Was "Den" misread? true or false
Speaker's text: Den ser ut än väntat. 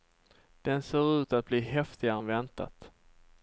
false